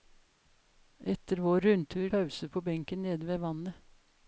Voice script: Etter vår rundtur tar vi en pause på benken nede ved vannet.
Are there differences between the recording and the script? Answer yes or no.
yes